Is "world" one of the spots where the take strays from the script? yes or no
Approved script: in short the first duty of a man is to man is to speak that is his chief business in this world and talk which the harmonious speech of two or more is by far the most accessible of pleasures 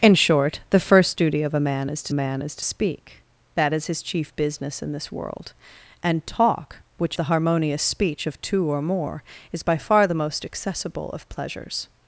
no